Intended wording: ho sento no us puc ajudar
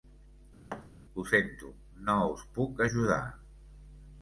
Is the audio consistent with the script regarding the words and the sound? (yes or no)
no